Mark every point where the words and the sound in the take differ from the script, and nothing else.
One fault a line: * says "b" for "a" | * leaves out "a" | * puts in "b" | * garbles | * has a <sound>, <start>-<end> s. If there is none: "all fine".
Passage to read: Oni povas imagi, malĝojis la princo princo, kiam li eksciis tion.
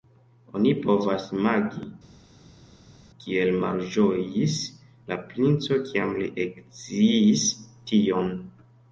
* puts in "kiel"
* leaves out "princo"